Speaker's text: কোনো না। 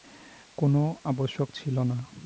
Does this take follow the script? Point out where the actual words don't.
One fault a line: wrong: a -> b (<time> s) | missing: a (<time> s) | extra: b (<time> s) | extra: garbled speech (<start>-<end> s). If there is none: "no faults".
extra: আবশ্যক ছিল (1.0 s)